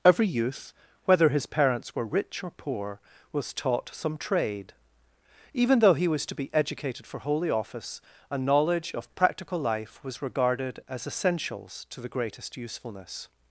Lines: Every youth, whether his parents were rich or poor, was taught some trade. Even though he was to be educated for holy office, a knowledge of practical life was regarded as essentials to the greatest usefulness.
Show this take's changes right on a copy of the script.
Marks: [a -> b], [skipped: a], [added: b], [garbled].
Every youth, whether his parents were rich or poor, was taught some trade. Even though he was to be educated for holy office, a knowledge of practical life was regarded as essentials to the greatest usefulness.